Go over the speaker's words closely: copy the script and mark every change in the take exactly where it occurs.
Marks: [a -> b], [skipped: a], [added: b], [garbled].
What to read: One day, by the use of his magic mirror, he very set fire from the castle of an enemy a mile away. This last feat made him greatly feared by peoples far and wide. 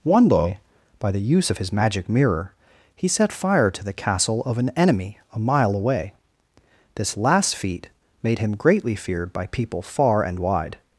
One day, by the use of his magic mirror, he [skipped: very] set fire [from -> to] the castle of an enemy a mile away. This last feat made him greatly feared by [peoples -> people] far and wide.